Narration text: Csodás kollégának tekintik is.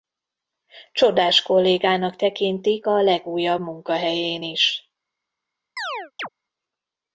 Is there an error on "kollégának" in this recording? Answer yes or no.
no